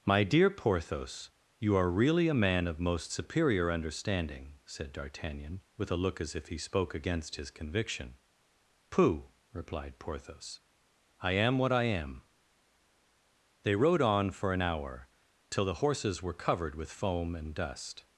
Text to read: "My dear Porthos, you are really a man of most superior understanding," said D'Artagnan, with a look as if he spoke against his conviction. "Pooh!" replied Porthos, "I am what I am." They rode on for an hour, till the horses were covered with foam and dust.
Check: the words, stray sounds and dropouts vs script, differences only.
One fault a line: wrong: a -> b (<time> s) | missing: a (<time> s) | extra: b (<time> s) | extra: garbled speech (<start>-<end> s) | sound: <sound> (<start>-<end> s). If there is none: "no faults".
no faults